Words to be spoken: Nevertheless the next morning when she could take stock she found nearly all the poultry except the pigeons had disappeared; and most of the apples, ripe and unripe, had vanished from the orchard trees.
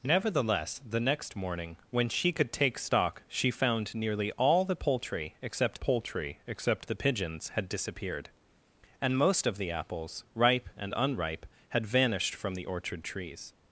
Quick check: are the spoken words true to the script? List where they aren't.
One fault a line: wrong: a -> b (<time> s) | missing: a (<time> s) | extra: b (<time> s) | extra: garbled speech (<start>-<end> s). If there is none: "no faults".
extra: poultry except (5.8 s)